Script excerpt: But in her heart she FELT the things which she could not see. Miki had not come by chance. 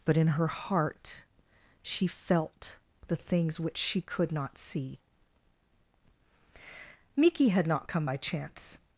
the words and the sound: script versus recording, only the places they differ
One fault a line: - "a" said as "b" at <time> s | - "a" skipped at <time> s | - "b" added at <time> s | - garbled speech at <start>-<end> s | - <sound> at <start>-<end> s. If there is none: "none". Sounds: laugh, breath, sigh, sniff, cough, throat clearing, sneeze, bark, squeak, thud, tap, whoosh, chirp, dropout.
none